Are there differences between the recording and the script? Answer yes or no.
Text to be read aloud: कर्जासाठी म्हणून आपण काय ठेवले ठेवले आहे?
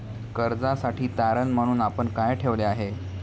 yes